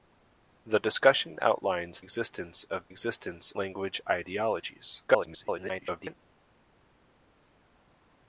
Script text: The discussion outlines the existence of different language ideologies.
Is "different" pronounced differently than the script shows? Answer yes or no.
yes